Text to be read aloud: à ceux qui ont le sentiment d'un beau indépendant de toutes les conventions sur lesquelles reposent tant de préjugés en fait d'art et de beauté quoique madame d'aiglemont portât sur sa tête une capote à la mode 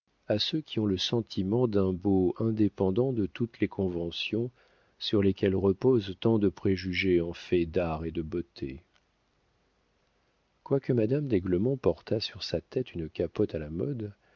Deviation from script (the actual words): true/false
false